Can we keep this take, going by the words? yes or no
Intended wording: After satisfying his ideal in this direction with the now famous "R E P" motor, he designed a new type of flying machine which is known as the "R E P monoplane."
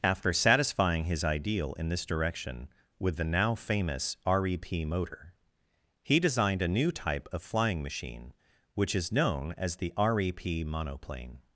yes